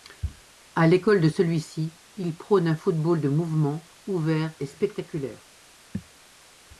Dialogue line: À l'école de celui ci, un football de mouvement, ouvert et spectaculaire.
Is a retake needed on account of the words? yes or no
yes